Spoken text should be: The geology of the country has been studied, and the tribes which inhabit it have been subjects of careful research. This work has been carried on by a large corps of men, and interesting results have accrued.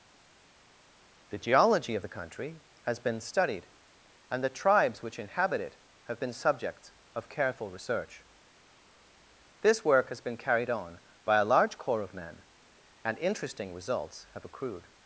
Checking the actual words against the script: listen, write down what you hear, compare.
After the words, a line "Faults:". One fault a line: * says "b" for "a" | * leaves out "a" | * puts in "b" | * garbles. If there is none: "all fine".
The geology of the country has been studied, and the tribes which inhabit it have been subjects of careful research. This work has been carried on by a large corps of men, and interesting results have accrued.
Faults:
all fine